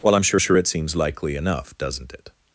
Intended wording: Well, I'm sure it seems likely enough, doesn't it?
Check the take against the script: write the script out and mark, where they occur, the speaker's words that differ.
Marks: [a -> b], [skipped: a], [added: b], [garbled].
Well, I'm sure [added: sure] it seems likely enough, doesn't it?